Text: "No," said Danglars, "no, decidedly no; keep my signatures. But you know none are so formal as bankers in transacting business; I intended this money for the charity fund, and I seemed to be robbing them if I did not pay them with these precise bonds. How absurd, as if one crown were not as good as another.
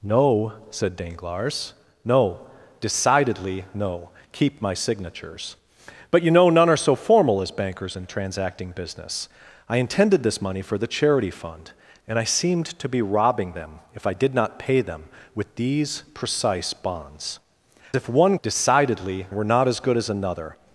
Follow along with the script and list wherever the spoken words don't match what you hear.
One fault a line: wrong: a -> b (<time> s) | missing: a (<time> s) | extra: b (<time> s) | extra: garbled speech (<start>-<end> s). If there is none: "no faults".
missing: How absurd as (17.4 s)
wrong: crown -> decidedly (18.4 s)